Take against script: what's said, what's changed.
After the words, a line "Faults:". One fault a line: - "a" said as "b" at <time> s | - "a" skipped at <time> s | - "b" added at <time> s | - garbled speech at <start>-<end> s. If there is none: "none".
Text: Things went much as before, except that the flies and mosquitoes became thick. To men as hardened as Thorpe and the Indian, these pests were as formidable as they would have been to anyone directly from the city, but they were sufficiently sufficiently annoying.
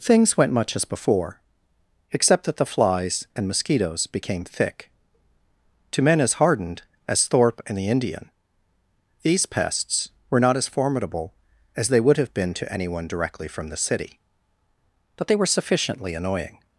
Things went much as before, except that the flies and mosquitoes became thick. To men as hardened as Thorpe and the Indian, these pests were not as formidable as they would have been to anyone directly from the city, but they were sufficiently annoying.
Faults:
- "not" added at 10.4 s
- "sufficiently" skipped at 16.1 s